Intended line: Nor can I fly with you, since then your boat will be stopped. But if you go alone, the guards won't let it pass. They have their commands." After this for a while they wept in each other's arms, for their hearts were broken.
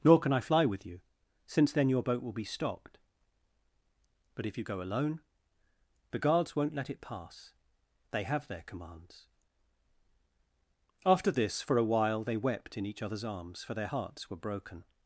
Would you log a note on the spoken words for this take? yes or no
no